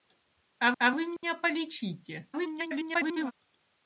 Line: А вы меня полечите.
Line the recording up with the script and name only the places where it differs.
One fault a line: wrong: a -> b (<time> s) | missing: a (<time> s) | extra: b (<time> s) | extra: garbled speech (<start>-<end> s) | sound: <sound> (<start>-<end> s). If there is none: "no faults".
extra: а (0.8 s)
sound: dropout (1.2-1.2 s)
extra: garbled speech (2.3-3.3 s)